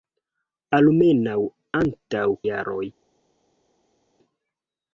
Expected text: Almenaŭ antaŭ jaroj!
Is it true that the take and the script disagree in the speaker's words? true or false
false